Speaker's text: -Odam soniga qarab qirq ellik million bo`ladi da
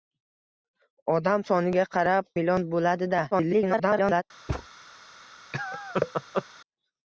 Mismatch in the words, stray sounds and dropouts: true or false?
true